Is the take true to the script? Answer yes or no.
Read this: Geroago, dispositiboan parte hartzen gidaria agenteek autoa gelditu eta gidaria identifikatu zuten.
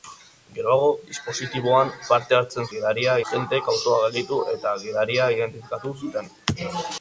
yes